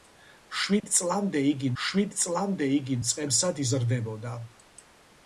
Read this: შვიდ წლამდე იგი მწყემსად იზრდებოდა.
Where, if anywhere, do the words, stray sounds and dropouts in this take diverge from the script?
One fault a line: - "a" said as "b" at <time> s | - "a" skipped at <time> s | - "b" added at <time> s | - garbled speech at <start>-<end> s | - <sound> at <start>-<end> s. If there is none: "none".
- dropout at 0.8-0.8 s
- "შვიდ წლამდე იგი" added at 1.8 s